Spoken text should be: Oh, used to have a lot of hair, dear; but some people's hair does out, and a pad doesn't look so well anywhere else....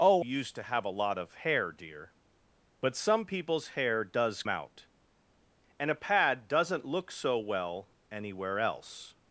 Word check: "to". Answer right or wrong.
right